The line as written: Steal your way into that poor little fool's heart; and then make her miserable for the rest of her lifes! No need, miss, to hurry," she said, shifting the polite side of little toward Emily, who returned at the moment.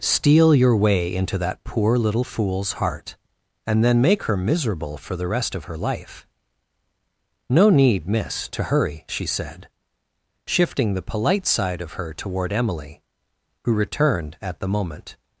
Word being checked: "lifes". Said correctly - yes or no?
no